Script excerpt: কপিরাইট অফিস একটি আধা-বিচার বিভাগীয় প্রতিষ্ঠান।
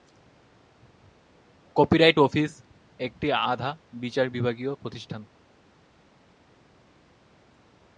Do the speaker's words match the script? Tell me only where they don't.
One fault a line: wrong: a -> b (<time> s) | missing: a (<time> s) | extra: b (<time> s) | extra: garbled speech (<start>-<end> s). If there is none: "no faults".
no faults